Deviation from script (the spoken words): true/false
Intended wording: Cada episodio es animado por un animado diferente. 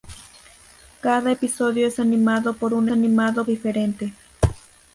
false